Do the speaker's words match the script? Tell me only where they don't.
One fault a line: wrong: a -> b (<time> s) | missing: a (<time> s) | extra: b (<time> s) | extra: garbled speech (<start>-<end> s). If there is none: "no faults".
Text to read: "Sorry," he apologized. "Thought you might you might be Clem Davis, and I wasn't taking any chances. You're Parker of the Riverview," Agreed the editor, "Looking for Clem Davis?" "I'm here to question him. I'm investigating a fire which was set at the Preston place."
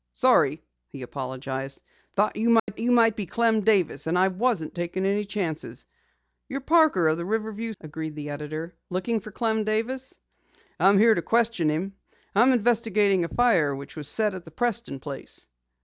no faults